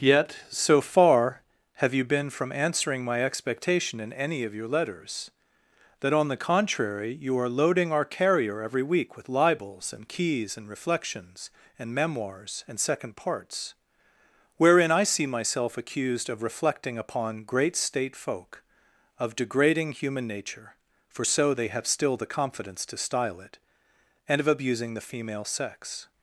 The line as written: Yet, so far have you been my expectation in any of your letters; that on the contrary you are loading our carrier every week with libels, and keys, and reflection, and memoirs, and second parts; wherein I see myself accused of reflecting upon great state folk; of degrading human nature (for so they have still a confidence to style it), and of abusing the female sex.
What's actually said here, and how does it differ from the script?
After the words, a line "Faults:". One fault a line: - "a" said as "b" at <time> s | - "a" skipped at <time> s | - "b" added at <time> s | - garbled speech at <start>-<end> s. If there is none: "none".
Yet, so far have you been from answering my expectation in any of your letters; that on the contrary you are loading our carrier every week with libels, and keys, and reflections, and memoirs, and second parts; wherein I see myself accused of reflecting upon great state folk; of degrading human nature (for so they have still the confidence to style it), and of abusing the female sex.
Faults:
- "from answering" added at 2.3 s
- "reflection" said as "reflections" at 10.7 s
- "a" said as "the" at 22.1 s